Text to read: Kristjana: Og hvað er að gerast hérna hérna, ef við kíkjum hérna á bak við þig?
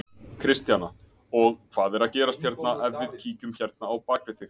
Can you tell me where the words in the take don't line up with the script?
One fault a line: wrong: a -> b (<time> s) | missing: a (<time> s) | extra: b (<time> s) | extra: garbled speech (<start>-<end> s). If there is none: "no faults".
missing: hérna (2.7 s)